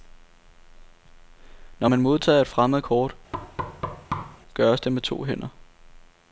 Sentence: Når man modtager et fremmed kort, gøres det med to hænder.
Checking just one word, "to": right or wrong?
right